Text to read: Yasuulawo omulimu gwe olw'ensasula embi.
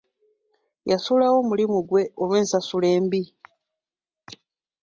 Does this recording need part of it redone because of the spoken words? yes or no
no